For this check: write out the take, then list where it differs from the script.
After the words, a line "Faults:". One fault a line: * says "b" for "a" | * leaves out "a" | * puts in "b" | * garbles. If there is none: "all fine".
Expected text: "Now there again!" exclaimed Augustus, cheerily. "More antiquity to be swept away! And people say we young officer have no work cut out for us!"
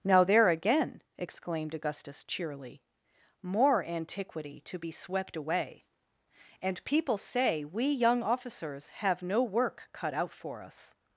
"Now there again!" exclaimed Augustus, cheerily. "More antiquity to be swept away! And people say we young officers have no work cut out for us!"
Faults:
* says "officers" for "officer"